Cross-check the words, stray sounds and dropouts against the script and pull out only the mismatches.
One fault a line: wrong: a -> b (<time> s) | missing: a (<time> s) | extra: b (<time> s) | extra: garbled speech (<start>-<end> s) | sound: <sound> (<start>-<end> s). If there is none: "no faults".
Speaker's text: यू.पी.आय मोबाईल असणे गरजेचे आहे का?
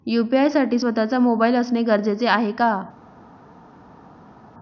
extra: साठी स्वत:चा (0.5 s)